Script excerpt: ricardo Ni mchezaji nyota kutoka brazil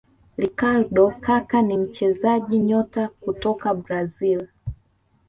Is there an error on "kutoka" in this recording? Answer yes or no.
no